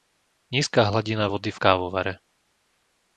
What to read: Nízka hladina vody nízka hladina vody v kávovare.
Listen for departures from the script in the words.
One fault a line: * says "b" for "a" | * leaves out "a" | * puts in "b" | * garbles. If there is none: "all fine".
* leaves out "nízka hladina vody"